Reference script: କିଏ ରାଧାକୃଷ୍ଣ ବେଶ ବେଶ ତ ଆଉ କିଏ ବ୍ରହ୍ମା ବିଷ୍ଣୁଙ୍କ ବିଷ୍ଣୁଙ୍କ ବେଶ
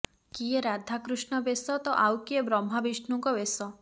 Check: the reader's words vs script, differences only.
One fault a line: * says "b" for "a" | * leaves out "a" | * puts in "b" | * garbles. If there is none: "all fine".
* leaves out "ବେଶ"
* leaves out "ବିଷ୍ଣୁଙ୍କ"